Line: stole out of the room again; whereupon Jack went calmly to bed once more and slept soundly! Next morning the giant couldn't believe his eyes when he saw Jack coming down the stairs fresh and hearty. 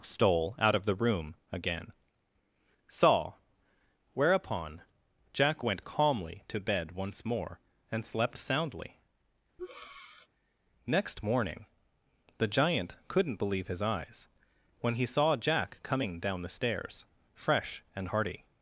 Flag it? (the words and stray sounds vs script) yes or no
yes